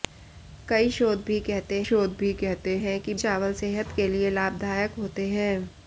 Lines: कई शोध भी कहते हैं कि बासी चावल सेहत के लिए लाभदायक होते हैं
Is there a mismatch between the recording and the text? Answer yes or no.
yes